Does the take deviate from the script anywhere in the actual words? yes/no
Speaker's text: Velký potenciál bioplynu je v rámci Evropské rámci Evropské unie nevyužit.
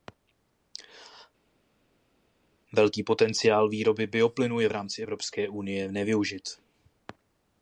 yes